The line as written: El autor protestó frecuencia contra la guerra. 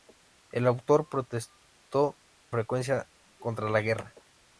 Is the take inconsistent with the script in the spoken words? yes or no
no